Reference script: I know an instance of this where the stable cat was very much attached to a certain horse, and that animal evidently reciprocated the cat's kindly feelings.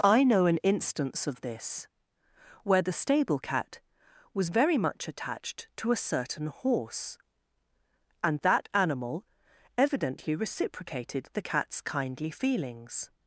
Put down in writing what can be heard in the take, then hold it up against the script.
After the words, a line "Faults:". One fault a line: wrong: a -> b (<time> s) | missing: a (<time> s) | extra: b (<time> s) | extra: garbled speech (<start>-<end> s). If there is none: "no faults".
I know an instance of this where the stable cat was very much attached to a certain horse, and that animal evidently reciprocated the cat's kindly feelings.
Faults:
no faults